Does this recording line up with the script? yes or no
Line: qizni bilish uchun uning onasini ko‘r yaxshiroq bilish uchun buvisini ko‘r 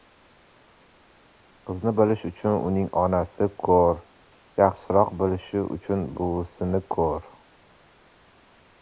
yes